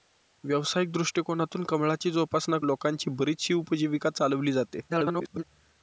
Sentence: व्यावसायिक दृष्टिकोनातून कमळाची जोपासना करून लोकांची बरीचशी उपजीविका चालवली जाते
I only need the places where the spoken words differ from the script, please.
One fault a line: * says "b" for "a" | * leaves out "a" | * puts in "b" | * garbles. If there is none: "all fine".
* leaves out "करून"
* garbles